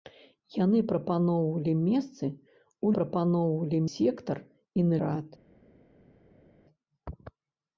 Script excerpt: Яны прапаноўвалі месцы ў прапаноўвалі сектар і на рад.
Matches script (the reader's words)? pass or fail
pass